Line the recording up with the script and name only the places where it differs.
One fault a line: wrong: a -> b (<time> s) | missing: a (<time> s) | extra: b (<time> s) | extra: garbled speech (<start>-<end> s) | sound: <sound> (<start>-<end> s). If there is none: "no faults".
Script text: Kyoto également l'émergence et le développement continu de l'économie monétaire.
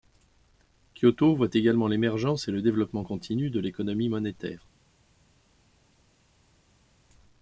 extra: voit (1.4 s)